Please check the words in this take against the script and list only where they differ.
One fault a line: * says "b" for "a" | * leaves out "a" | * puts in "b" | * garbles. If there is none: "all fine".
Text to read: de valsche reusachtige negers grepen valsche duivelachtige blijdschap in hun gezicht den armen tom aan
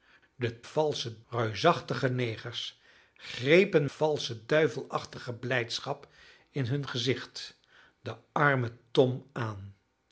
all fine